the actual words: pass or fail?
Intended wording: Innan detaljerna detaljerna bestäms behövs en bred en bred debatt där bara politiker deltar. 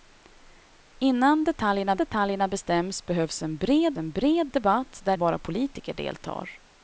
pass